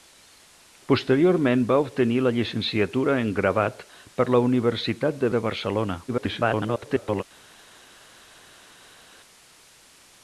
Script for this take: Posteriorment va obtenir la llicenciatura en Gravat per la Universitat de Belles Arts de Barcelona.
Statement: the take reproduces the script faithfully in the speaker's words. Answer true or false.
false